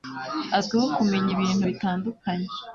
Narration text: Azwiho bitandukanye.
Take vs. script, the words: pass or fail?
fail